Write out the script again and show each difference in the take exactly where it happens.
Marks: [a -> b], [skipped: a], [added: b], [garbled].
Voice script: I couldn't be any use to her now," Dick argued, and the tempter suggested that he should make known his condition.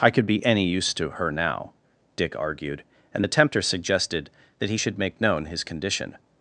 I [couldn't -> could] be any use to her now," Dick argued, and the tempter suggested that he should make known his condition.